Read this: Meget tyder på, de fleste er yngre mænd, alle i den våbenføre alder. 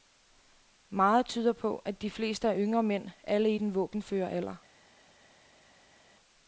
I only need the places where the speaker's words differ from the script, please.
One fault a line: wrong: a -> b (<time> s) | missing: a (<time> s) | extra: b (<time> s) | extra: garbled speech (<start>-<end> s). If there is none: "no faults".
extra: at (1.8 s)